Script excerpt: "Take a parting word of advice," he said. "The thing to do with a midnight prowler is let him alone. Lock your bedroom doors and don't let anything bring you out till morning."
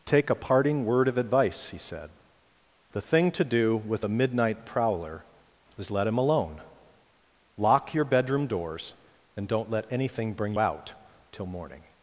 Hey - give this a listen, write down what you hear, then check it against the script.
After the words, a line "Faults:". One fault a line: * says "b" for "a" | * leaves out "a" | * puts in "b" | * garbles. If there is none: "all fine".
"Take a parting word of advice," he said. "The thing to do with a midnight prowler is let him alone. Lock your bedroom doors and don't let anything bring out till morning."
Faults:
* leaves out "you"